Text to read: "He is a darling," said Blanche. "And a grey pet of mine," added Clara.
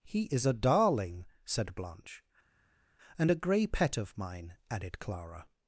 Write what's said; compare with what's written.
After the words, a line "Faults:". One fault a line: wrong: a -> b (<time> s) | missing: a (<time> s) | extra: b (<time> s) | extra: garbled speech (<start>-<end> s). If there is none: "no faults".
"He is a darling," said Blanche. "And a grey pet of mine," added Clara.
Faults:
no faults